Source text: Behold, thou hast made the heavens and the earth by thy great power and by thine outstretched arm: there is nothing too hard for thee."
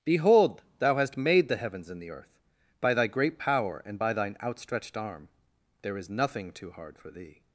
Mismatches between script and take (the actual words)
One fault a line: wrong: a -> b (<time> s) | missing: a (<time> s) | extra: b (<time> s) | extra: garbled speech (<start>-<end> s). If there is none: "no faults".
no faults